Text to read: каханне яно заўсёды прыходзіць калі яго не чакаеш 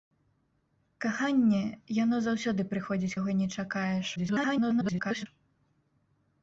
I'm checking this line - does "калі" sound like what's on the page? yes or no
no